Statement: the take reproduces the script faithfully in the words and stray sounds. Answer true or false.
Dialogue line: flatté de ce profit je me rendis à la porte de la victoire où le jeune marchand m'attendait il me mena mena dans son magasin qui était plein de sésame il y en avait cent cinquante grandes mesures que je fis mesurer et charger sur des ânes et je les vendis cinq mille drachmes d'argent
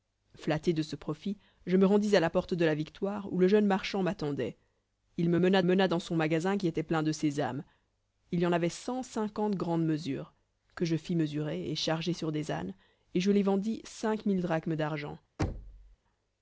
false